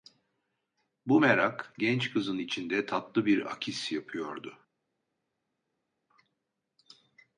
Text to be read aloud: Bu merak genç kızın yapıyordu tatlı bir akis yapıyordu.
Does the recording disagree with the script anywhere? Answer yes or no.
yes